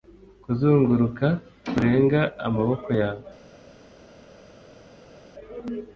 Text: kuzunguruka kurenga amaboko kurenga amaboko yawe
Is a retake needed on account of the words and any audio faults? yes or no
yes